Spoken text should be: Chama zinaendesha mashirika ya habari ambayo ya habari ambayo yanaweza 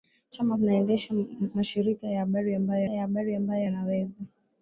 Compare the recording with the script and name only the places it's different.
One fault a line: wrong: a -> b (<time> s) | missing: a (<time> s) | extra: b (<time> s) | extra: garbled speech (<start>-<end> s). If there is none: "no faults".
no faults